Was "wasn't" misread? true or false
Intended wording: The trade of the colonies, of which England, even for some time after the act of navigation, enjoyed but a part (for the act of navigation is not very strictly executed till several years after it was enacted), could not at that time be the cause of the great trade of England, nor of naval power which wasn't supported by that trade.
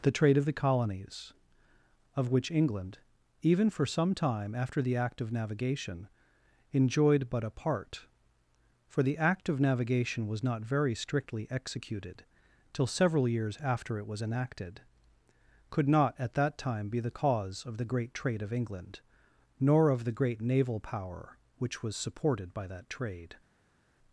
true